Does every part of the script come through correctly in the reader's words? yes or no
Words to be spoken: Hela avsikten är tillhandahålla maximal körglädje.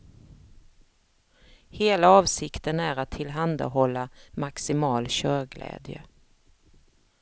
no